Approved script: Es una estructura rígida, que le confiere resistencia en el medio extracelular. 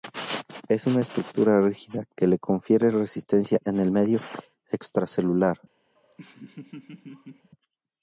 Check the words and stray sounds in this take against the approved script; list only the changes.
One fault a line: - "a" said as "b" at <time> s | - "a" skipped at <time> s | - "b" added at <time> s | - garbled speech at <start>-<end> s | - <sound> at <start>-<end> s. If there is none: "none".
- laugh at 6.0-7.5 s